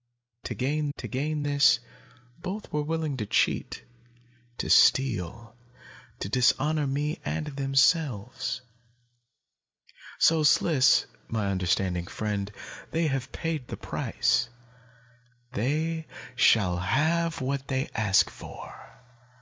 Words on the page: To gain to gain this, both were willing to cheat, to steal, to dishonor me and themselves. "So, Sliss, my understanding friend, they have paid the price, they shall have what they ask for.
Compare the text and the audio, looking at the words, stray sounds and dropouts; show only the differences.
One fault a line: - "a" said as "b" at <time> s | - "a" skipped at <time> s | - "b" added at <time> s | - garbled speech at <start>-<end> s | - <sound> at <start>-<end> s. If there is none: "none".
none